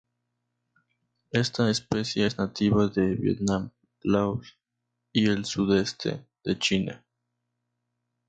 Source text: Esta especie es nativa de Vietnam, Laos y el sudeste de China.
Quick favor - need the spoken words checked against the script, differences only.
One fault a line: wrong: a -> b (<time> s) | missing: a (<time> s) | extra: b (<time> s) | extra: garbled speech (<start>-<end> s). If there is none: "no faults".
no faults